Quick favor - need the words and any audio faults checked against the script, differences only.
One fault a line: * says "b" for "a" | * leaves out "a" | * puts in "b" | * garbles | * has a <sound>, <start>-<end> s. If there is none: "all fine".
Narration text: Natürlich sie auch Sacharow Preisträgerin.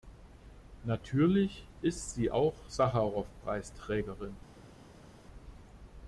* puts in "ist"